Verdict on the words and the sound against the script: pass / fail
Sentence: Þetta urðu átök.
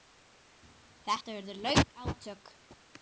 fail